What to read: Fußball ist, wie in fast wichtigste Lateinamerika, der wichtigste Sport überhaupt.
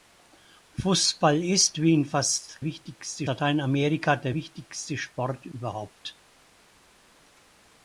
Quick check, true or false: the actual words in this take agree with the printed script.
true